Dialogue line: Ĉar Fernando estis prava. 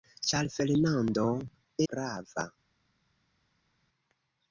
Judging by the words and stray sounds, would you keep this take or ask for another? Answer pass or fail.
fail